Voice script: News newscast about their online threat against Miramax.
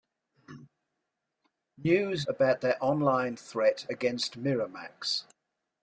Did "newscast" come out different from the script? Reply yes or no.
yes